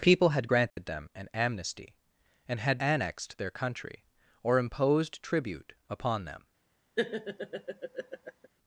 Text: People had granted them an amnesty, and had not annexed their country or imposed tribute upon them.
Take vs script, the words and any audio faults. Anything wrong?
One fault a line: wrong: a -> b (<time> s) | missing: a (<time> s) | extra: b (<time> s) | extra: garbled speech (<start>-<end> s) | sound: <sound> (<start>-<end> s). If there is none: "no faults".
sound: dropout (0.7-0.8 s)
missing: not (2.8 s)
sound: laugh (7.0-8.5 s)